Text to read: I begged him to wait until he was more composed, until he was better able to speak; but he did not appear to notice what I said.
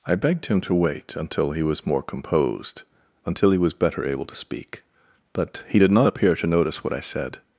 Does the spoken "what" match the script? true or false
true